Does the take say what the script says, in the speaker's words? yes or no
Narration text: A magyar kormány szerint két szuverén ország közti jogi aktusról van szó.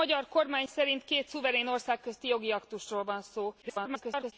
no